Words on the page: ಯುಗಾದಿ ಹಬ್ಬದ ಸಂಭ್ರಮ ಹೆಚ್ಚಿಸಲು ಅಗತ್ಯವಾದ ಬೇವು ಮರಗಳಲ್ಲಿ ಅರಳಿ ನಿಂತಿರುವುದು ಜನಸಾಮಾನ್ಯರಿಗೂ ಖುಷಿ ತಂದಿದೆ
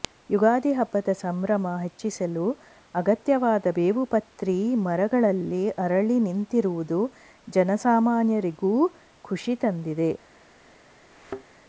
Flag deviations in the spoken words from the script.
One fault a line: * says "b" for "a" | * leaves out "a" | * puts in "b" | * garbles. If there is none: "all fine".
* puts in "ಪ್ರತಿ"